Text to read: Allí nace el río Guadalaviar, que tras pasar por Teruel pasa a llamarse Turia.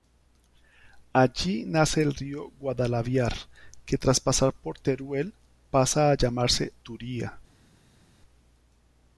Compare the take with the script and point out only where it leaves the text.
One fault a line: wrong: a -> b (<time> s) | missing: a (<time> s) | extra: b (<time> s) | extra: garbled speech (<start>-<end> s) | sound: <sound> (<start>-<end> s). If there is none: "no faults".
no faults